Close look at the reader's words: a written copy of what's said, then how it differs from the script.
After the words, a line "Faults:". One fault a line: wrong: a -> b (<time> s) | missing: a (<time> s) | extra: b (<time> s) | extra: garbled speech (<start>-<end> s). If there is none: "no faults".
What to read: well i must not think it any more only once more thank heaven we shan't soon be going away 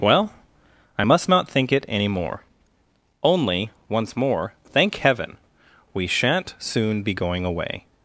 well i must not think it any more only once more thank heaven we shan't soon be going away
Faults:
no faults